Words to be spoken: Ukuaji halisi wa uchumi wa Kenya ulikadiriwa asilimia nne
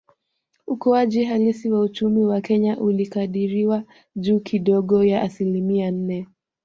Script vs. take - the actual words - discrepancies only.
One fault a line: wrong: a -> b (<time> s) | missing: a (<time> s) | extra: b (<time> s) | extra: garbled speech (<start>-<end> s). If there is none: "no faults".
extra: juu kidogo ya (4.1 s)